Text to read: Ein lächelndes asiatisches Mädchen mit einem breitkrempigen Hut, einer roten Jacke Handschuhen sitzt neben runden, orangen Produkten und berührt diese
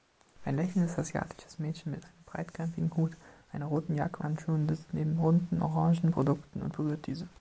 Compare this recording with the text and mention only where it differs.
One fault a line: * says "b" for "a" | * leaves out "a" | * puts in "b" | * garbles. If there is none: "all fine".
all fine